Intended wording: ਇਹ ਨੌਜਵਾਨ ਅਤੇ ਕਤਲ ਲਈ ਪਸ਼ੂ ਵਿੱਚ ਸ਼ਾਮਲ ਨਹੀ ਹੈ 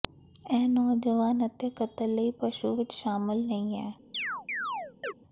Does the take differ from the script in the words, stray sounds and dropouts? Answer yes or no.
yes